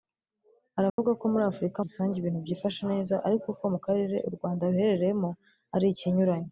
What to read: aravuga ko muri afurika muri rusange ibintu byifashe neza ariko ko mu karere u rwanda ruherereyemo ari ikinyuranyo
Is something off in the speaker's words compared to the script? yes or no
yes